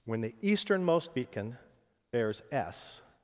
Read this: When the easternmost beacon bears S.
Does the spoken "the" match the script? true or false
true